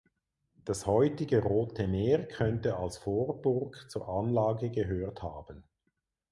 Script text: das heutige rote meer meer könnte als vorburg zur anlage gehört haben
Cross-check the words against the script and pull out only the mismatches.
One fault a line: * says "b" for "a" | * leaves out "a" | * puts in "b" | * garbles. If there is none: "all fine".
* leaves out "meer"